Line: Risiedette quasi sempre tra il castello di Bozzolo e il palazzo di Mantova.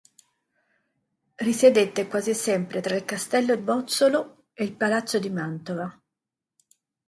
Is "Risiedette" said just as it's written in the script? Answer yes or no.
yes